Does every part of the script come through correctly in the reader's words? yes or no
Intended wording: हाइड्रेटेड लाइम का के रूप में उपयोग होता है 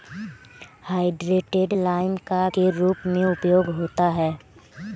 yes